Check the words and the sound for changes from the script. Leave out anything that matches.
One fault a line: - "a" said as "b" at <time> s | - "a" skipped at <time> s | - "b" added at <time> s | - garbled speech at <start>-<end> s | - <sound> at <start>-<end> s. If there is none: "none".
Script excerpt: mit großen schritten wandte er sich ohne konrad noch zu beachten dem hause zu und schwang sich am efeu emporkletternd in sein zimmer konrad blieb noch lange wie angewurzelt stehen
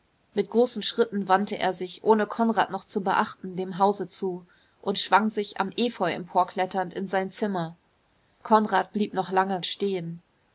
- "wie angewurzelt" skipped at 9.6 s